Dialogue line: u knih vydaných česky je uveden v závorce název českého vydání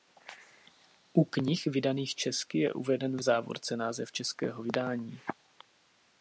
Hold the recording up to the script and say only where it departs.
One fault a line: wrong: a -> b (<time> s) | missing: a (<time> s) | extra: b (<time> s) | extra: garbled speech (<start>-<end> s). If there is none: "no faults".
no faults